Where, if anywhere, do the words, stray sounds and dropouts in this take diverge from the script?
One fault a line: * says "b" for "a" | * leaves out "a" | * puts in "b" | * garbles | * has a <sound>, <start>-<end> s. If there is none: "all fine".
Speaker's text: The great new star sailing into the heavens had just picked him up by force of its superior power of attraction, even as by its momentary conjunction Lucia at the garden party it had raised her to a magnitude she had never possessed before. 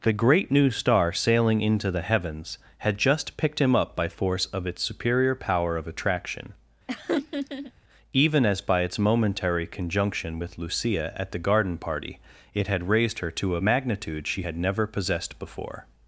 * has a laugh, 6.9-7.7 s
* puts in "with"